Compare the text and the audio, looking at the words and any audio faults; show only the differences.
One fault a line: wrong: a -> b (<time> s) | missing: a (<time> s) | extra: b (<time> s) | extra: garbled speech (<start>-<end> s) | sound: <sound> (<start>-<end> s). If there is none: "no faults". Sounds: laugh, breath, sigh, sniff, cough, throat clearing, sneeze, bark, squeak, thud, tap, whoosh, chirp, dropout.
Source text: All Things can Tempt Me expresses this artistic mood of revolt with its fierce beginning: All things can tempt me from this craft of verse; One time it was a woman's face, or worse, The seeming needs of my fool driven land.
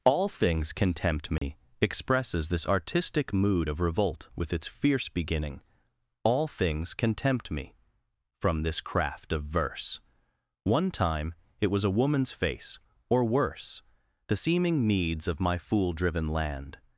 sound: dropout (1.4-1.4 s)